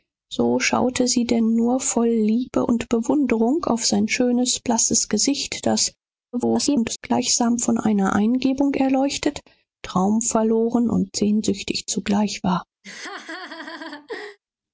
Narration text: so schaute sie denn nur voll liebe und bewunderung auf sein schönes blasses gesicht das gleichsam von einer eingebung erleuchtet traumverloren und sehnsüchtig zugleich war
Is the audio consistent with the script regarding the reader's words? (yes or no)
no